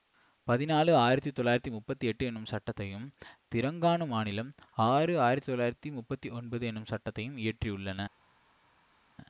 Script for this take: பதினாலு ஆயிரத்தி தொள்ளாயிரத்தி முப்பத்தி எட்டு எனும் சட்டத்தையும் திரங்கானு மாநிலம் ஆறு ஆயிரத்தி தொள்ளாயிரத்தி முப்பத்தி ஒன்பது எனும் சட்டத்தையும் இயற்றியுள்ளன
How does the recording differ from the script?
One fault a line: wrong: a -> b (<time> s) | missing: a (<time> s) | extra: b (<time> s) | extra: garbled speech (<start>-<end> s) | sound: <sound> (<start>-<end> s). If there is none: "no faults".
no faults